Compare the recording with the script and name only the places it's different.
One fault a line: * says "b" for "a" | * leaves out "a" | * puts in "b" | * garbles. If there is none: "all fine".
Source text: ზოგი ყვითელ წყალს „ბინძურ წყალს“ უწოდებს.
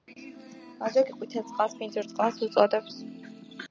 all fine